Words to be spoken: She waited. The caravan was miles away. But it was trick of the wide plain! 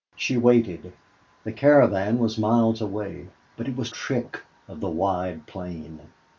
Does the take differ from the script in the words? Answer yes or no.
no